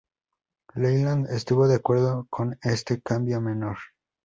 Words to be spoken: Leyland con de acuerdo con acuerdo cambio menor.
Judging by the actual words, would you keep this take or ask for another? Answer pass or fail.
fail